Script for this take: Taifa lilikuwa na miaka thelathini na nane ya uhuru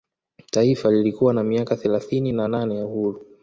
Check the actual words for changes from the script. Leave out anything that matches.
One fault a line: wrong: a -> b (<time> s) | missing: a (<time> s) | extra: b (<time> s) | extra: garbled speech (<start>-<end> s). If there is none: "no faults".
no faults